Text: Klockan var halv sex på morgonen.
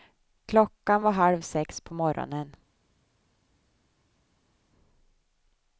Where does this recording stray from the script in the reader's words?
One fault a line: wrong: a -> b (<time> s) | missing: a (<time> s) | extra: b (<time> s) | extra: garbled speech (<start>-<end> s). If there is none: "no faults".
no faults